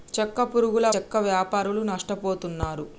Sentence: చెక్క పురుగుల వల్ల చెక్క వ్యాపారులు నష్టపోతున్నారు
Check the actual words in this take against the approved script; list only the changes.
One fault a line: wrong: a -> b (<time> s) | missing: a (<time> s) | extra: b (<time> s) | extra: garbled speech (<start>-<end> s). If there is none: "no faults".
missing: వల్ల (0.9 s)